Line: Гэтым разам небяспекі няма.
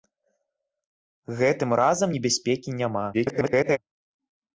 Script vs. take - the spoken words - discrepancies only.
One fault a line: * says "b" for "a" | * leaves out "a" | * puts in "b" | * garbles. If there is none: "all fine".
* garbles